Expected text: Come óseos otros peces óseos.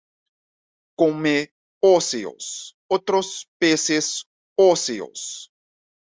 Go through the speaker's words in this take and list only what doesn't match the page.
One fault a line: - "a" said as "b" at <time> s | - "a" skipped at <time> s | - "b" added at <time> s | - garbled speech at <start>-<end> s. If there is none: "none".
none